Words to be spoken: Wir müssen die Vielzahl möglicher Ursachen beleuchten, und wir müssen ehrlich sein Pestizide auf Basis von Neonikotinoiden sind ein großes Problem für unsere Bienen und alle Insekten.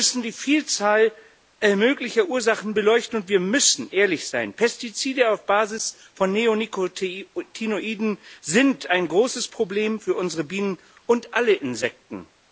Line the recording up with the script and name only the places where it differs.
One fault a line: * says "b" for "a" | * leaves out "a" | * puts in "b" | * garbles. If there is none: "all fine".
all fine